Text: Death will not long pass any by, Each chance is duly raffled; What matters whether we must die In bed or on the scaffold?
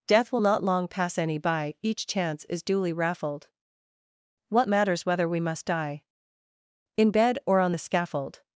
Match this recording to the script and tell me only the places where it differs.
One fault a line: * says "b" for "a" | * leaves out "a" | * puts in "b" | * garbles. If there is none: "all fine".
all fine